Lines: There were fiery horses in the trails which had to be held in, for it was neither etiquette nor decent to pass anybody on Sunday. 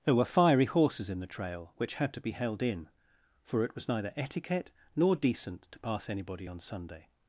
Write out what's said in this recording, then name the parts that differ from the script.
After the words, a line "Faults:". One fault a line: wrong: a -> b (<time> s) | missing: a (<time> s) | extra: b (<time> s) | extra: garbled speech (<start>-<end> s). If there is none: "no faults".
There were fiery horses in the trail which had to be held in, for it was neither etiquette nor decent to pass anybody on Sunday.
Faults:
wrong: trails -> trail (1.3 s)